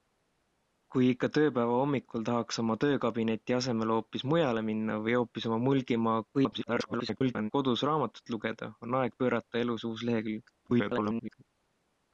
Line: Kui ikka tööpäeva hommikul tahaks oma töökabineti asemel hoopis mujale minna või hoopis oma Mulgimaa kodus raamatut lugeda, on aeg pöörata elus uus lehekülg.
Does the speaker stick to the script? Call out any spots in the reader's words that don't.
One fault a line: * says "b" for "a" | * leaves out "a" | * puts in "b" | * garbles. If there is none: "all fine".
* garbles
* garbles